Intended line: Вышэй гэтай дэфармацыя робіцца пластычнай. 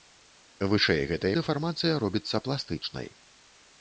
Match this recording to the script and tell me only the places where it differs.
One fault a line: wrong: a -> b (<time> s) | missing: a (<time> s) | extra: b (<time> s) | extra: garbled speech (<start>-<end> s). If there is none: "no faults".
no faults